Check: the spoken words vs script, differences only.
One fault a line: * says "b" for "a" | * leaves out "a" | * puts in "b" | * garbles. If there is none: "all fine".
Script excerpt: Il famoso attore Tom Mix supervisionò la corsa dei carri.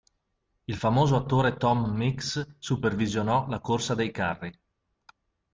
all fine